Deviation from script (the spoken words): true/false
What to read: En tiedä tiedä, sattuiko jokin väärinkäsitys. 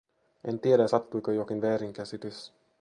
true